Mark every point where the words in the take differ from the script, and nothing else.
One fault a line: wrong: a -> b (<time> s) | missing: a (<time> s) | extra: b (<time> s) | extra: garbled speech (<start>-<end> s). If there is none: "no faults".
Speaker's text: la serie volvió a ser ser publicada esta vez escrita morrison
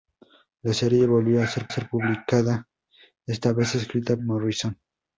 no faults